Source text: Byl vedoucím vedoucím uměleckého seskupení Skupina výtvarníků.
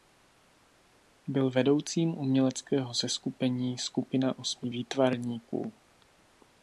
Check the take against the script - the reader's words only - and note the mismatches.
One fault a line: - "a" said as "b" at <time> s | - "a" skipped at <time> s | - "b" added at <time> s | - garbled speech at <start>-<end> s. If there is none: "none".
- "vedoucím" skipped at 2.2 s
- "osmi" added at 4.4 s